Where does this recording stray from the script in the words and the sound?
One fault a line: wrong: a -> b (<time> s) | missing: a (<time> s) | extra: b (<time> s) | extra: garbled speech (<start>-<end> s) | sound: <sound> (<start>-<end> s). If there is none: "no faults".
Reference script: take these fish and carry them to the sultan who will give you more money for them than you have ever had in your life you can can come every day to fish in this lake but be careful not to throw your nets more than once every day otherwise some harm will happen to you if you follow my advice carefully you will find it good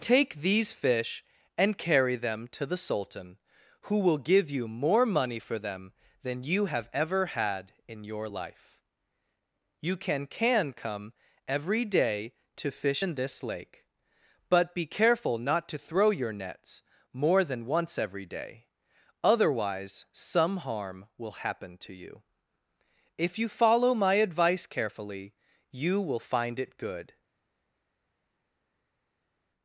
no faults